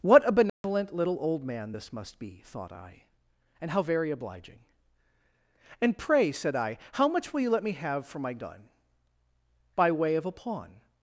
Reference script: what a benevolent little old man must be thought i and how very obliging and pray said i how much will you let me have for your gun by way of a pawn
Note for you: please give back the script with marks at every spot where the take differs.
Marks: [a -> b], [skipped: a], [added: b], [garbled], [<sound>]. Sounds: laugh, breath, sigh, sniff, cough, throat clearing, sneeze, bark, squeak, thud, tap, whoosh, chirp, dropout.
what a benevolent [dropout] little old man [added: this] must be thought i and how very obliging and pray said i how much will you let me have for [your -> my] gun by way of a pawn